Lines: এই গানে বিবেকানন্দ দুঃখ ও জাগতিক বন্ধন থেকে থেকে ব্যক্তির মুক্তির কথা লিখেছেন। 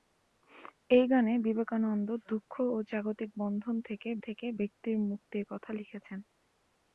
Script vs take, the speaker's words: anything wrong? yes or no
no